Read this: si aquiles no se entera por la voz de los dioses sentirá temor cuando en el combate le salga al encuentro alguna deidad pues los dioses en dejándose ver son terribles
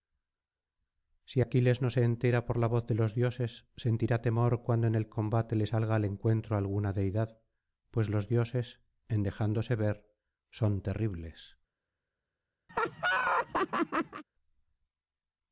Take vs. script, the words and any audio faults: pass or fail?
fail